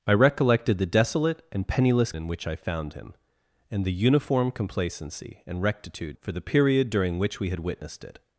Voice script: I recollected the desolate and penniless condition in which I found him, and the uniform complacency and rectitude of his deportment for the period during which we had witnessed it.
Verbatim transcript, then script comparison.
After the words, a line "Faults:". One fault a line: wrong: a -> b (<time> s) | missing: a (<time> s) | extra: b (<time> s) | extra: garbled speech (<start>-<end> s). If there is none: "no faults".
I recollected the desolate and penniless in which I found him, and the uniform complacency and rectitude for the period during which we had witnessed it.
Faults:
missing: condition (2.1 s)
missing: of his deportment (6.2 s)